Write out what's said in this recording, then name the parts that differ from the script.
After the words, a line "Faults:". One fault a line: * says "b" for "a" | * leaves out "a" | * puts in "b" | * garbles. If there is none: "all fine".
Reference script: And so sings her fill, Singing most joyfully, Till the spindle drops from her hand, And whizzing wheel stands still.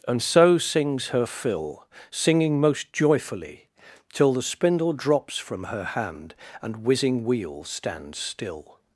And so sings her fill, Singing most joyfully, Till the spindle drops from her hand, And whizzing wheel stands still.
Faults:
all fine